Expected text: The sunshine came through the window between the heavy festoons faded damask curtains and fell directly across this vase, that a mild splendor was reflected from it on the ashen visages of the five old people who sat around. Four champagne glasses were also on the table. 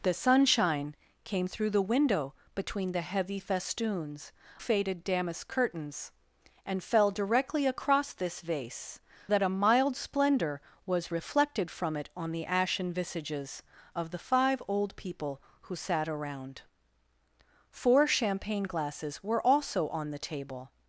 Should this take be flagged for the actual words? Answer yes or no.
no